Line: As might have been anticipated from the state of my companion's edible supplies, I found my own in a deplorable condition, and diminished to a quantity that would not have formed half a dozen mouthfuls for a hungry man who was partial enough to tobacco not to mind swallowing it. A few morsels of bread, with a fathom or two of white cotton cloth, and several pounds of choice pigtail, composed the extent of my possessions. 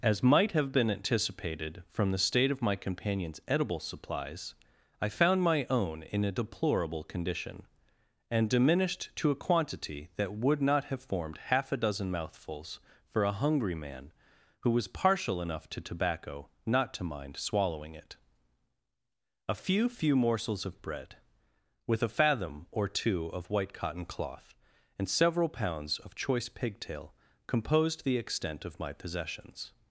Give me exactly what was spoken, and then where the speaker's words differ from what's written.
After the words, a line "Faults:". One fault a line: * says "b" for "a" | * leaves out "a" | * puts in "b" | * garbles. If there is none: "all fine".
As might have been anticipated from the state of my companion's edible supplies, I found my own in a deplorable condition, and diminished to a quantity that would not have formed half a dozen mouthfuls for a hungry man who was partial enough to tobacco not to mind swallowing it. A few few morsels of bread, with a fathom or two of white cotton cloth, and several pounds of choice pigtail, composed the extent of my possessions.
Faults:
* puts in "few"